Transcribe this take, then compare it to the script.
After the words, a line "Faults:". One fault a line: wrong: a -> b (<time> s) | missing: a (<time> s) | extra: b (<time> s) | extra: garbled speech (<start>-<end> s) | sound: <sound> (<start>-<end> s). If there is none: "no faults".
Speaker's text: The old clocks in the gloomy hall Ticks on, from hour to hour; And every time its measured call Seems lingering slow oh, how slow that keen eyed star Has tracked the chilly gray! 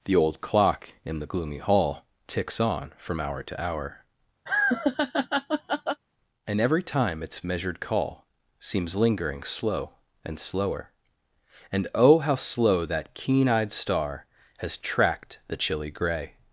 The old clock in the gloomy hall Ticks on, from hour to hour; And every time its measured call Seems lingering slow and slower: And, oh, how slow that keen eyed star Has tracked the chilly gray!
Faults:
wrong: clocks -> clock (0.4 s)
sound: laugh (4.5-6.0 s)
extra: and slower And (10.2 s)